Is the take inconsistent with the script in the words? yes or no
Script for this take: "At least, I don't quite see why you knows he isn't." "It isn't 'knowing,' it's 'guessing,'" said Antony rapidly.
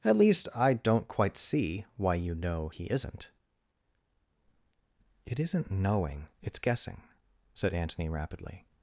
yes